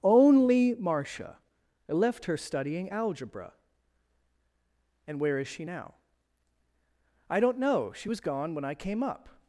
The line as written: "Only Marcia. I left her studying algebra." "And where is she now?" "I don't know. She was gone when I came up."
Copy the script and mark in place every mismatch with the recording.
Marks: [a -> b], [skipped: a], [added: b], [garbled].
"Only Marcia. I left her studying algebra." "And where is she now?" "I don't know. She was gone when I came up."